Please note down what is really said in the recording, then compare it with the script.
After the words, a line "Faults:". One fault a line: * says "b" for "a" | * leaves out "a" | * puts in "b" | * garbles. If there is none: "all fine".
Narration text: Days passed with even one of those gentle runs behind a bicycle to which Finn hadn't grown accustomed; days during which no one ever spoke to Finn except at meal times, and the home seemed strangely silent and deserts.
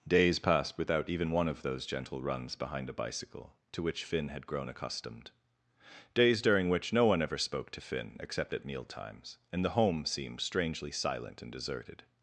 Days passed without even one of those gentle runs behind a bicycle to which Finn had grown accustomed; days during which no one ever spoke to Finn except at meal times, and the home seemed strangely silent and deserted.
Faults:
* says "without" for "with"
* says "had" for "hadn't"
* says "deserted" for "deserts"